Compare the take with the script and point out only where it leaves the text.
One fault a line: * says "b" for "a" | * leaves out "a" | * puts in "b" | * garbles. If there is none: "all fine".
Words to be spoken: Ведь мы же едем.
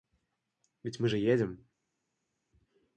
all fine